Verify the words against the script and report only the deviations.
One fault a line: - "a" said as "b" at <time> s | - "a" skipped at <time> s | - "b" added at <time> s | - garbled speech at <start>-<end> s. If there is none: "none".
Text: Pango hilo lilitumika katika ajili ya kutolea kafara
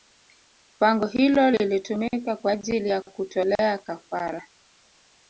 - "katika" said as "kwa" at 2.4 s